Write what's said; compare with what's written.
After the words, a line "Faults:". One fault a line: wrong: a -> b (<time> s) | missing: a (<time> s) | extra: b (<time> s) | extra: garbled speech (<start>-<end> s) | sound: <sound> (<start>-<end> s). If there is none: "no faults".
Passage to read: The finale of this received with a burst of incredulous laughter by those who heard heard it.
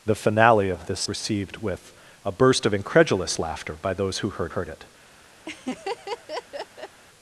The finale of this received with a burst of incredulous laughter by those who heard heard it.
Faults:
sound: laugh (5.5-7.0 s)